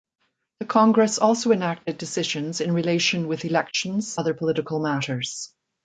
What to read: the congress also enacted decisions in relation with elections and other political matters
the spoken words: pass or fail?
fail